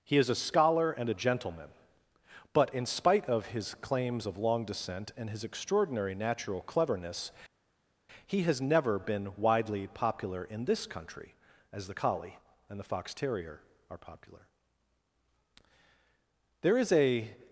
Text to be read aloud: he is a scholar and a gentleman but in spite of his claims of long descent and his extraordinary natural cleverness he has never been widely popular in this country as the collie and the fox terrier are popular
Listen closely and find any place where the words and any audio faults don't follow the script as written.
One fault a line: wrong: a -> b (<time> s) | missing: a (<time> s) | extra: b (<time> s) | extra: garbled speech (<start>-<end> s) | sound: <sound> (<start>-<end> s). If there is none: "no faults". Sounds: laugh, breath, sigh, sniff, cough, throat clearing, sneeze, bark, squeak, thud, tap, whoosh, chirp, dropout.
extra: there is a (16.6 s)